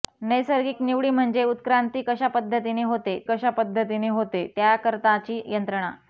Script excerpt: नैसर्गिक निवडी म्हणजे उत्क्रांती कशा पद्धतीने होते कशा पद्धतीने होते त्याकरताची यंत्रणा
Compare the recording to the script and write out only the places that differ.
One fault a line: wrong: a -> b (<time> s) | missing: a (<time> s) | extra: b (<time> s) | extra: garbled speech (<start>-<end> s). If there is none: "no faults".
no faults